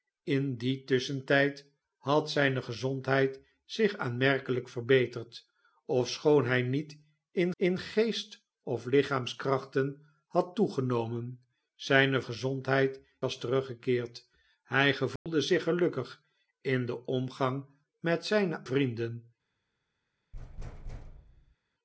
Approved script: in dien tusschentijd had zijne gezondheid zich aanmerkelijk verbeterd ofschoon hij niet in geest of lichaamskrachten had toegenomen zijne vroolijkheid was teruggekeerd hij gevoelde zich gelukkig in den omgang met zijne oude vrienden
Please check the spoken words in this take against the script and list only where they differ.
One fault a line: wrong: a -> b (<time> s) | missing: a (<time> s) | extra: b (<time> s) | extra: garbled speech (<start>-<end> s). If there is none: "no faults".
extra: in (7.6 s)
wrong: vroolijkheid -> gezondheid (12.2 s)
missing: oude (18.7 s)